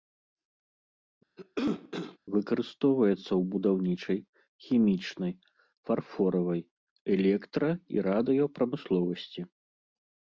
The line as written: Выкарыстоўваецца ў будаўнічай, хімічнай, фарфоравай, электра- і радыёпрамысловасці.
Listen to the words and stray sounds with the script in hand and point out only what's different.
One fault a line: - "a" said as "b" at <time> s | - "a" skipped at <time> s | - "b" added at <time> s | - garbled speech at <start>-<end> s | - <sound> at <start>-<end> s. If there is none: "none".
- cough at 1.4-2.2 s